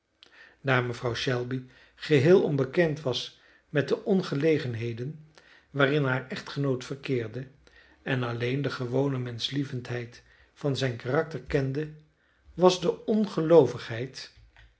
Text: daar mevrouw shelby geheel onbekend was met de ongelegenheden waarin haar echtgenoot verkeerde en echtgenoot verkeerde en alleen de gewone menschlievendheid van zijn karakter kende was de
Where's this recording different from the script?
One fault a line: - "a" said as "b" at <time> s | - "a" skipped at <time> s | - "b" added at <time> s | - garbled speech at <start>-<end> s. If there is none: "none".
- "echtgenoot verkeerde en" skipped at 8.2 s